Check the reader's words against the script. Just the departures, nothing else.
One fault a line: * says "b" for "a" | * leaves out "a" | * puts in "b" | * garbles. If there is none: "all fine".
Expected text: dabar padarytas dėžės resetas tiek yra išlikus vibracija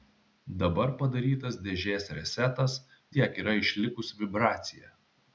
all fine